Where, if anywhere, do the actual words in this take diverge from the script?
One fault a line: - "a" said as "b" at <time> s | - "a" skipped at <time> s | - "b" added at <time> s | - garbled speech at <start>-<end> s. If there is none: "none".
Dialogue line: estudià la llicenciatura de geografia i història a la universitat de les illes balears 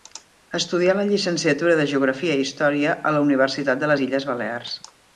none